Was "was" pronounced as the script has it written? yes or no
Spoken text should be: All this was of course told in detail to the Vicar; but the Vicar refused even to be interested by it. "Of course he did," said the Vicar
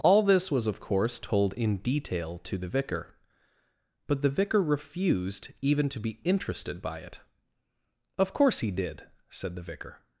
yes